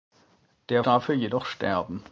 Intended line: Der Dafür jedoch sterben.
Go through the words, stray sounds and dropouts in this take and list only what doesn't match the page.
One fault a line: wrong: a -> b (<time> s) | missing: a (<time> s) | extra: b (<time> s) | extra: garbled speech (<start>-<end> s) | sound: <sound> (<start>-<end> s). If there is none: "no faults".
no faults